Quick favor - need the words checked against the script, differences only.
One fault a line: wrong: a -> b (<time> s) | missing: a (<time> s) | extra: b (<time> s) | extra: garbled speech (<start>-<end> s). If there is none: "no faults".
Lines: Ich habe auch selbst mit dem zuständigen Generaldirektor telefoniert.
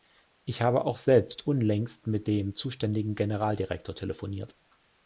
extra: unlängst (1.4 s)